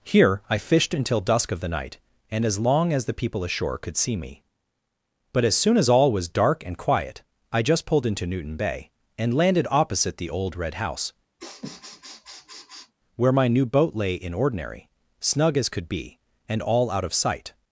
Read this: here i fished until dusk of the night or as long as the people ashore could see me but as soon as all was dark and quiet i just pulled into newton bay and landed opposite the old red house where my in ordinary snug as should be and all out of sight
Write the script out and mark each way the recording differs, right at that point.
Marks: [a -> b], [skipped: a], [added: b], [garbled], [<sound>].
here i fished until dusk of the night [or -> and] as long as the people ashore could see me but as soon as all was dark and quiet i just pulled into newton bay and landed opposite the old red house [sniff] where my [added: new boat lay] in ordinary snug as [should -> could] be and all out of sight